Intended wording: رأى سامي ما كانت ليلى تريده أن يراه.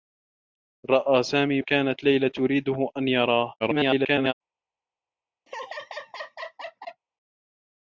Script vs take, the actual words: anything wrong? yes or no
yes